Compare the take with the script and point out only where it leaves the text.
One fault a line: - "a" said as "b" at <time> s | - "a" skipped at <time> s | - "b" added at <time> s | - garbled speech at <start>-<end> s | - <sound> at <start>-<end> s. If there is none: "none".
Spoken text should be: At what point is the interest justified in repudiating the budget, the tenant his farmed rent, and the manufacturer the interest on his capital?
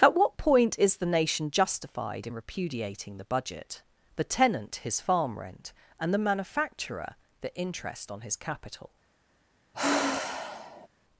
- "interest" said as "nation" at 1.1 s
- "farmed" said as "farm" at 5.0 s
- sigh at 9.7-10.9 s